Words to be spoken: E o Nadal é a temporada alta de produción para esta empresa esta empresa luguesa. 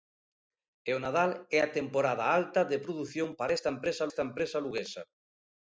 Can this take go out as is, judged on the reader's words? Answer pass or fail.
pass